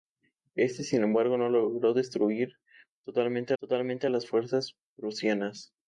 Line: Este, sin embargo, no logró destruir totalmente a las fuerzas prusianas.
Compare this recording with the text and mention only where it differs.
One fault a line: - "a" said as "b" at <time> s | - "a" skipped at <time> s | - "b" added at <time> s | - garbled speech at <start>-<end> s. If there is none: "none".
- "totalmente" added at 3.6 s